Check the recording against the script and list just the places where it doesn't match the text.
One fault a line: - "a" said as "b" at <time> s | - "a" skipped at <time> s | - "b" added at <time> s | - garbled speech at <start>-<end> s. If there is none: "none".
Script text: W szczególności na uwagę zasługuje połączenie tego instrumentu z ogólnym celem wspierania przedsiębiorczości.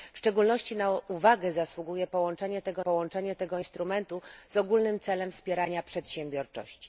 - "połączenie tego" added at 2.8 s